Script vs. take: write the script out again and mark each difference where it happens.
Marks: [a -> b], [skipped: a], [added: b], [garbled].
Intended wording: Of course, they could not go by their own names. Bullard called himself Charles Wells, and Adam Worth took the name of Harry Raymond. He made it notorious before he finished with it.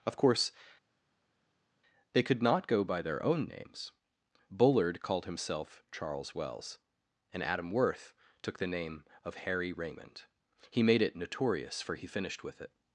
Of course, they could not go by their own names. Bullard called himself Charles Wells, and Adam Worth took the name of Harry Raymond. He made it notorious [before -> for] he finished with it.